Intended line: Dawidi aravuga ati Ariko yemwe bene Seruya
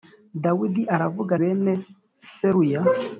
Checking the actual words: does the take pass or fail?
fail